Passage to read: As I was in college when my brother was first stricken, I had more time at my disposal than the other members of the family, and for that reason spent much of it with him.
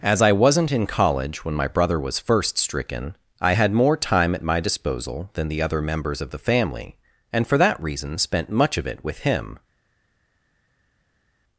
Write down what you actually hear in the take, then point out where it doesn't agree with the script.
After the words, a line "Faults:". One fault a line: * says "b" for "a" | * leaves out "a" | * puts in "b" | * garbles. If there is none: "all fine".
As I wasn't in college when my brother was first stricken, I had more time at my disposal than the other members of the family, and for that reason spent much of it with him.
Faults:
* says "wasn't" for "was"